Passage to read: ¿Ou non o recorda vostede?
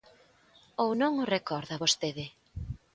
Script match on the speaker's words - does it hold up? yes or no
yes